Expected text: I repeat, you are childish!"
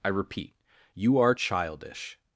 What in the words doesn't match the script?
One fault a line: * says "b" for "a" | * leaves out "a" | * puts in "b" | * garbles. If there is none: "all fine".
all fine